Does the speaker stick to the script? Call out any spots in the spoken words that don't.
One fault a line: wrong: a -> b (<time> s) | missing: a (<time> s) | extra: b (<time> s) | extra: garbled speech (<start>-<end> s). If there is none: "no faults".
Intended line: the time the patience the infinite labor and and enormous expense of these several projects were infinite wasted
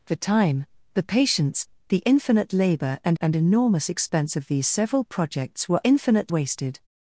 no faults